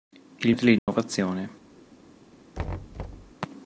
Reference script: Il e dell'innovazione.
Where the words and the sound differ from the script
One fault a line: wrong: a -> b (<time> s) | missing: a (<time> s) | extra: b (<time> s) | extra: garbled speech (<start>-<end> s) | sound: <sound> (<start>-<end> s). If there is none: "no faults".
sound: dropout (0.8-0.9 s)
sound: thud (2.5-3.3 s)